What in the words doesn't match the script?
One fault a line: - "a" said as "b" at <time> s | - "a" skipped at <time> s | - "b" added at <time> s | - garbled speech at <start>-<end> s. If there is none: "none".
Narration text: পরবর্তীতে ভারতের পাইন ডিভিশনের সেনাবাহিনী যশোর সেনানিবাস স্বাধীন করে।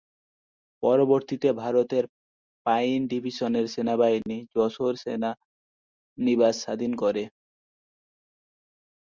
none